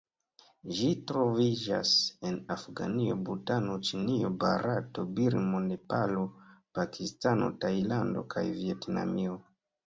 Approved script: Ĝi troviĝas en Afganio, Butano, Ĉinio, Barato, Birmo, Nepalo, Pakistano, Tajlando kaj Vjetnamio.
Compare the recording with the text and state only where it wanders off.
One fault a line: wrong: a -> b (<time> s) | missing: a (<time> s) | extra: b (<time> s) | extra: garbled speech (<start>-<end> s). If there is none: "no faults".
no faults